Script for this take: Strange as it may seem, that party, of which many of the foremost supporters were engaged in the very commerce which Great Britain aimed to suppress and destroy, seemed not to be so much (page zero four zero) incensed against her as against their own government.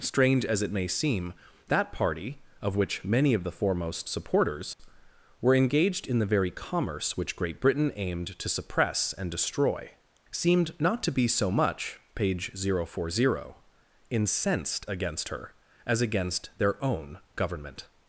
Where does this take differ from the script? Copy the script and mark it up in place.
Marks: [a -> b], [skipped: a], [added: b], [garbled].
Strange as it may seem, that party, of which many of the foremost supporters were engaged in the very commerce which Great Britain aimed to suppress and destroy, seemed not to be so much (page zero four zero) incensed against her as against their own government.